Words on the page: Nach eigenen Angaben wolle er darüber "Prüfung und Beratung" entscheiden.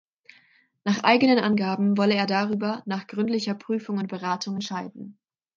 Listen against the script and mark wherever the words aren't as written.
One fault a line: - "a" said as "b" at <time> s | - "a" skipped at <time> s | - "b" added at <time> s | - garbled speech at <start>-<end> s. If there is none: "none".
- "nach gründlicher" added at 2.9 s